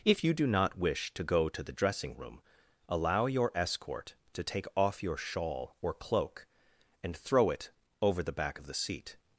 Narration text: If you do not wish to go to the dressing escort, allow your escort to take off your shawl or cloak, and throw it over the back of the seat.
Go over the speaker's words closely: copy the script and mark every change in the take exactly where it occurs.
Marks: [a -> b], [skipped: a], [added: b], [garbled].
If you do not wish to go to the dressing [escort, -> room] allow your escort to take off your shawl or cloak, and throw it over the back of the seat.